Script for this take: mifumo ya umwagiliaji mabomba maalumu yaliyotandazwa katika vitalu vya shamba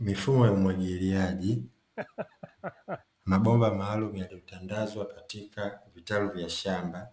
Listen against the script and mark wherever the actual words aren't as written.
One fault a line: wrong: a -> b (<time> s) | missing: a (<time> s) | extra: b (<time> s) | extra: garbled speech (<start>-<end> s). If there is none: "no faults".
no faults